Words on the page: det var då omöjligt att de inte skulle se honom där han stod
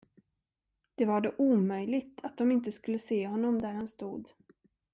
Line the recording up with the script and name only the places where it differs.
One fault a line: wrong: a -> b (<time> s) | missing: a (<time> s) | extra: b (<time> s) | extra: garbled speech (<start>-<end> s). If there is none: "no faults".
no faults